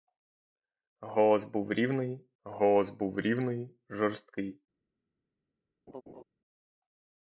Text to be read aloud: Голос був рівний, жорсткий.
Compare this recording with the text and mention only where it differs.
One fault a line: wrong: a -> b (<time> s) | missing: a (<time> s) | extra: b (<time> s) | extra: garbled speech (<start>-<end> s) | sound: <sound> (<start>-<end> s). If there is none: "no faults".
extra: голос був рівний (2.4 s)
sound: laugh (5.9-6.2 s)